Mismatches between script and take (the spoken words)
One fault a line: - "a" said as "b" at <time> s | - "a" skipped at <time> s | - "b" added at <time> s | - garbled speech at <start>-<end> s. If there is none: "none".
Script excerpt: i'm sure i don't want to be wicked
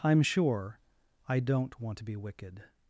none